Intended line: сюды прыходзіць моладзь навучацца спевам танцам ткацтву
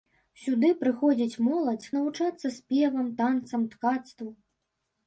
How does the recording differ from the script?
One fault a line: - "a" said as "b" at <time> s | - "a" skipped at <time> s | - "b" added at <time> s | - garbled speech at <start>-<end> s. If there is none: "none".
none